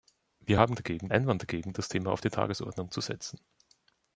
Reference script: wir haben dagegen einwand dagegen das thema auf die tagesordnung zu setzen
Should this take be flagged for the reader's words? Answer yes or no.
no